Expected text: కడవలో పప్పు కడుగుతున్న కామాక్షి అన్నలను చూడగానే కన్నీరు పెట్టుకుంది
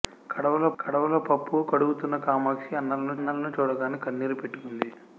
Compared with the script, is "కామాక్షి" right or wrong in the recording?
right